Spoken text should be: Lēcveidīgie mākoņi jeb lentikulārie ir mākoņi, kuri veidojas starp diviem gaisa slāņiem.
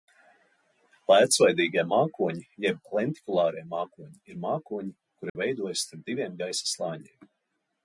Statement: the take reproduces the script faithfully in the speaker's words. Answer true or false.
false